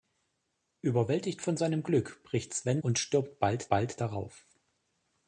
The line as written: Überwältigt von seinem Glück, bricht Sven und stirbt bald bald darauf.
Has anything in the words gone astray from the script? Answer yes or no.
no